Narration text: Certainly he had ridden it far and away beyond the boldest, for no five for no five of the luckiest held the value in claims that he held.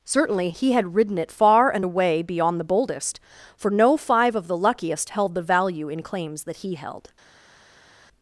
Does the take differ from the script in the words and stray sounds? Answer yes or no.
yes